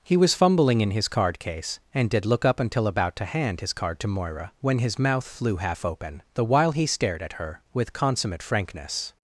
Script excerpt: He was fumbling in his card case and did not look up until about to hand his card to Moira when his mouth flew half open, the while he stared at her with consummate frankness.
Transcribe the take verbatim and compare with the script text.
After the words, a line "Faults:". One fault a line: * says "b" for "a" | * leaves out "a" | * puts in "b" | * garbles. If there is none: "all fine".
He was fumbling in his card case and did look up until about to hand his card to Moira when his mouth flew half open, the while he stared at her with consummate frankness.
Faults:
* leaves out "not"